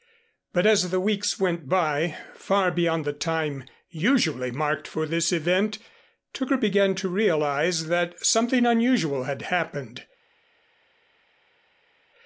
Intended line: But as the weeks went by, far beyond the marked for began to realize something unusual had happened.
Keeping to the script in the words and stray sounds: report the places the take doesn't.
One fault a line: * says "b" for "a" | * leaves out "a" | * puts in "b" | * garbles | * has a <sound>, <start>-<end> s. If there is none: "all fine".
* puts in "time usually"
* puts in "this event Tooker"
* puts in "that"